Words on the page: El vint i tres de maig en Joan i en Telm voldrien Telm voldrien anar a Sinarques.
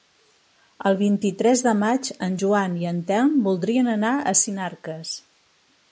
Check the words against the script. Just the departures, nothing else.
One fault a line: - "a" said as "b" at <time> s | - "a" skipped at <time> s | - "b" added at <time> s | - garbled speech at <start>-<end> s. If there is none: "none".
- "Telm voldrien" skipped at 3.9 s